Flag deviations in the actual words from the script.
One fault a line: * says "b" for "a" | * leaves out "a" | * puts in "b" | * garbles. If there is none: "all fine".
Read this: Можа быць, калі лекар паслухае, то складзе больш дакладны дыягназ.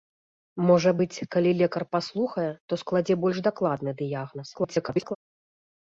* garbles